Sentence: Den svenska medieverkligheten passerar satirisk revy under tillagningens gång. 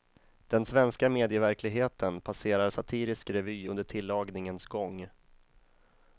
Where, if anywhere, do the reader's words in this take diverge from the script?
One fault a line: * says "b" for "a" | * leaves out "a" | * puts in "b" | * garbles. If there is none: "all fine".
all fine